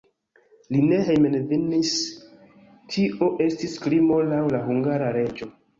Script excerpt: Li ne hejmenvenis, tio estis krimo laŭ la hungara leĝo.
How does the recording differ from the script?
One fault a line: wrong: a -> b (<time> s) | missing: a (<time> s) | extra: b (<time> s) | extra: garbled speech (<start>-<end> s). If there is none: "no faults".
no faults